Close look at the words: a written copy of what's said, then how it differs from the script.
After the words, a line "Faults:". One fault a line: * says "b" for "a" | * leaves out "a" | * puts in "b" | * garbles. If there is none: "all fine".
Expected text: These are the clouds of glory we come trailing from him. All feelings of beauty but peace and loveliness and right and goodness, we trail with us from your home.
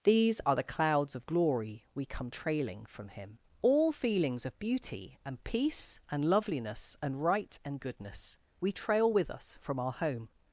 These are the clouds of glory we come trailing from him. All feelings of beauty and peace and loveliness and right and goodness, we trail with us from our home.
Faults:
* says "and" for "but"
* says "our" for "your"